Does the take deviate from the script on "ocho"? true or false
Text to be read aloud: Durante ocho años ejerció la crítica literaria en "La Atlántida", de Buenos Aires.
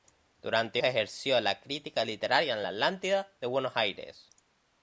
true